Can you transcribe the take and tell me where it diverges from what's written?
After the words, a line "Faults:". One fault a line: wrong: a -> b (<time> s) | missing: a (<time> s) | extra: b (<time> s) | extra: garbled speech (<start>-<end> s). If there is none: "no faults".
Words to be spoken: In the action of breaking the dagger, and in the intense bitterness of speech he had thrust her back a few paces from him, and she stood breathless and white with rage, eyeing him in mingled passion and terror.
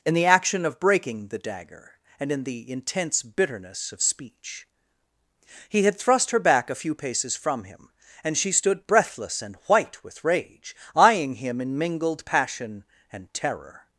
In the action of breaking the dagger, and in the intense bitterness of speech he had thrust her back a few paces from him, and she stood breathless and white with rage, eyeing him in mingled passion and terror.
Faults:
no faults